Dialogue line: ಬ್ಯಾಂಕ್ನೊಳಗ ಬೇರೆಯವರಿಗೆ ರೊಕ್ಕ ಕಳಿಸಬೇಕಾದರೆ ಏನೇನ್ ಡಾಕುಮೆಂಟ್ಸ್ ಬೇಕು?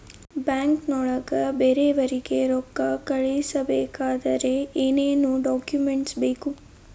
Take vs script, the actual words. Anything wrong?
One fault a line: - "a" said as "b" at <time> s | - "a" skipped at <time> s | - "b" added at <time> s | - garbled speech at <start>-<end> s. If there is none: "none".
none